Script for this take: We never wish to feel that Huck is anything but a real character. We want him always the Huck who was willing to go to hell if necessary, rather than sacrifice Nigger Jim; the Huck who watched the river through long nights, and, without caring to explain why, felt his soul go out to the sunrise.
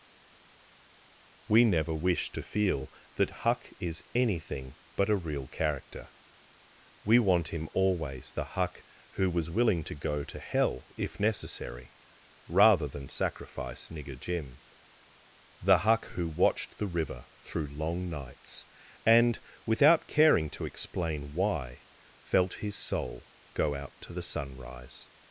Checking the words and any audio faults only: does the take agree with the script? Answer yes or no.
yes